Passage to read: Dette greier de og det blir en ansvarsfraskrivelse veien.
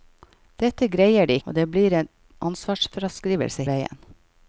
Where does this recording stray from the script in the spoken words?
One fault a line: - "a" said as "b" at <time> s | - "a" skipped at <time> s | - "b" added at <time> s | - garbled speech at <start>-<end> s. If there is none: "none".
none